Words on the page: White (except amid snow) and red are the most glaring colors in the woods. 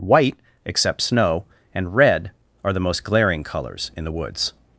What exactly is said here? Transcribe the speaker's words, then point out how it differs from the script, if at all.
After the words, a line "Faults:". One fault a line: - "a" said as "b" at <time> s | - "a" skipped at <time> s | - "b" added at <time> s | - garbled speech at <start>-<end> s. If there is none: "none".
White (except snow) and red are the most glaring colors in the woods.
Faults:
- "amid" skipped at 1.0 s